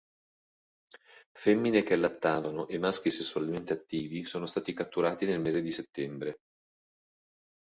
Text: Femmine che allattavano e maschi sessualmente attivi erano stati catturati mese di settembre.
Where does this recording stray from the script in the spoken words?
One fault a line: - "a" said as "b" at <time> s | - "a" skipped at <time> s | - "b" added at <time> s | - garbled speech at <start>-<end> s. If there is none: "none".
- "erano" said as "sono" at 4.2 s
- "nel" added at 5.3 s